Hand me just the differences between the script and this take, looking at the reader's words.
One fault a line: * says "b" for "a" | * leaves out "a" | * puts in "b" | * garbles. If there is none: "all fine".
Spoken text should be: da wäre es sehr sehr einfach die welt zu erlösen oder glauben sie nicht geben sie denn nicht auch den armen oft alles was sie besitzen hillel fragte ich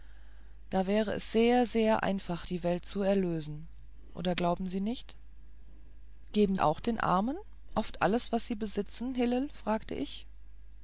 * leaves out "sie denn nicht"